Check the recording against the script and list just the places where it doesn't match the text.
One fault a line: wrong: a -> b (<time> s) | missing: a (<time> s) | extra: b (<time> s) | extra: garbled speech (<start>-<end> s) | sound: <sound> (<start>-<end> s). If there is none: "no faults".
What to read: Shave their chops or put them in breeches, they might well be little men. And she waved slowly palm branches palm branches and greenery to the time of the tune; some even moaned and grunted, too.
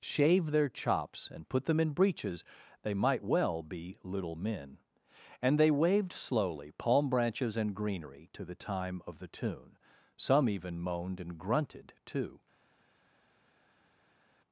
wrong: or -> and (1.3 s)
wrong: she -> they (5.6 s)
missing: palm branches (7.6 s)